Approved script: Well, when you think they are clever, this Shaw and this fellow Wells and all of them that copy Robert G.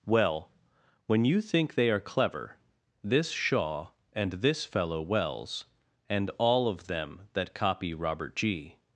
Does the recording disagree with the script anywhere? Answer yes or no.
no